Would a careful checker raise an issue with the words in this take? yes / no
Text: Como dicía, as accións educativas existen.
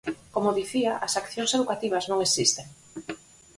yes